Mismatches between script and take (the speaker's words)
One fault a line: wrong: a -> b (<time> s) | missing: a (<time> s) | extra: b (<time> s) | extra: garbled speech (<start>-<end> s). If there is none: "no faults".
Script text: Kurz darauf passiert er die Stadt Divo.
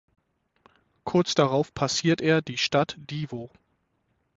no faults